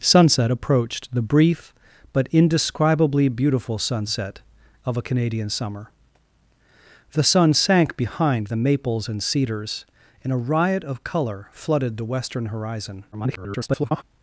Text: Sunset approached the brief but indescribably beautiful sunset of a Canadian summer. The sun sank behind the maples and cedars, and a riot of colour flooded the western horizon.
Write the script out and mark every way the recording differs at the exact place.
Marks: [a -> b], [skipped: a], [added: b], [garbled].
Sunset approached the brief but indescribably beautiful sunset of a Canadian summer. The sun sank behind the maples and cedars, and a riot of colour flooded the western horizon. [garbled]